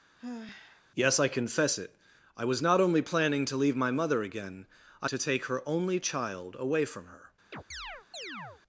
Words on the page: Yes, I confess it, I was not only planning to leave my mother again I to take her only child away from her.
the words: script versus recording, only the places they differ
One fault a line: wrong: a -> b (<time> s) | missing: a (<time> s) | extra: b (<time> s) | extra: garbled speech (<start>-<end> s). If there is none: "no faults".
no faults